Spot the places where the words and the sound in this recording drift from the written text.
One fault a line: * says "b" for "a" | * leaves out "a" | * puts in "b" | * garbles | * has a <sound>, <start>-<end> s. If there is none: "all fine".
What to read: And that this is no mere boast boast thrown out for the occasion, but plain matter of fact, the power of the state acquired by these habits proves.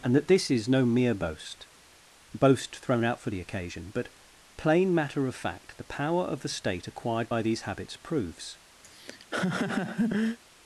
* has a laugh, 8.8-10.4 s